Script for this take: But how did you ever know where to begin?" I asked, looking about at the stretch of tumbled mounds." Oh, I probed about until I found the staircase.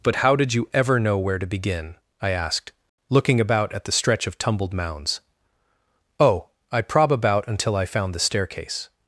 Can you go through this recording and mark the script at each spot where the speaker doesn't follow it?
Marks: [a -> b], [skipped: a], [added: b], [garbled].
But how did you ever know where to begin?" I asked, looking about at the stretch of tumbled mounds." Oh, I [probed -> prob] about until I found the staircase.